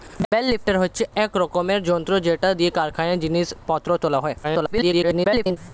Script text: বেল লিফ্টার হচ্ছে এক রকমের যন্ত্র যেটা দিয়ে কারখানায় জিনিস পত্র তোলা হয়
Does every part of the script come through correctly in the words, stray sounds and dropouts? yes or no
no